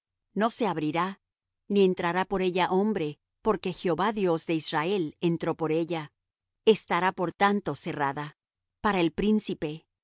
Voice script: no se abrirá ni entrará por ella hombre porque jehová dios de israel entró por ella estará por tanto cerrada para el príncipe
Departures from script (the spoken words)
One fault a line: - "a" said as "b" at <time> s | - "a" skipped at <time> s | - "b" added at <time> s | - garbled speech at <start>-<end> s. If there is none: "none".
none